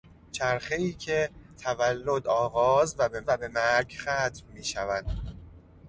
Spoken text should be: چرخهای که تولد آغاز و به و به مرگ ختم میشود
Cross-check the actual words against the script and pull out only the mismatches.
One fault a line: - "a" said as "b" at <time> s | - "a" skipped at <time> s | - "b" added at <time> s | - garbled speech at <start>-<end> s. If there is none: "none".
none